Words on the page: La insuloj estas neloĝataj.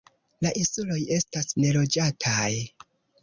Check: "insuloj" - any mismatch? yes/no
no